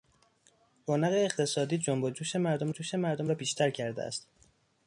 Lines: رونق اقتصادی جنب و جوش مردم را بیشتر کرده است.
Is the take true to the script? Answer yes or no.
no